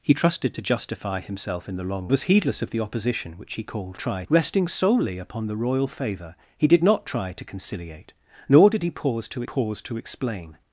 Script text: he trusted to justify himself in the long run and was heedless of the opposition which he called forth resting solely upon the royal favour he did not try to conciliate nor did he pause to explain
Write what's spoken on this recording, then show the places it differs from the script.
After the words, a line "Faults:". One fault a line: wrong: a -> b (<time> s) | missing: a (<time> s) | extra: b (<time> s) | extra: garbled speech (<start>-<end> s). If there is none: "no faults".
he trusted to justify himself in the long was heedless of the opposition which he called try resting solely upon the royal favour he did not try to conciliate nor did he pause to pause to explain
Faults:
missing: run and (2.1 s)
wrong: forth -> try (4.0 s)
extra: pause to (9.4 s)